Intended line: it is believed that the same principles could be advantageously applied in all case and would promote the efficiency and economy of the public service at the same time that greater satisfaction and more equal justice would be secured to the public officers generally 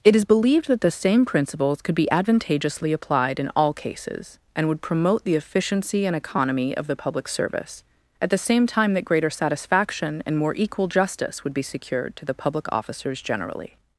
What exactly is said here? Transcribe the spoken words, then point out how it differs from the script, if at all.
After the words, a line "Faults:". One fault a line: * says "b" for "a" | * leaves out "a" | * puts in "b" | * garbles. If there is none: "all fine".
it is believed that the same principles could be advantageously applied in all cases and would promote the efficiency and economy of the public service at the same time that greater satisfaction and more equal justice would be secured to the public officers generally
Faults:
* says "cases" for "case"